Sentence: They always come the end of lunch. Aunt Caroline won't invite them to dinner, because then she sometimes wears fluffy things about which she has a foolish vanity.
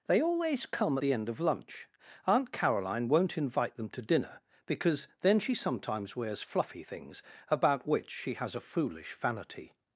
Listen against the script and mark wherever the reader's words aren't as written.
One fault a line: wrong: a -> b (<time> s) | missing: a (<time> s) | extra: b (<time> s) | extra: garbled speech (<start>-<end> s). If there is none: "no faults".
no faults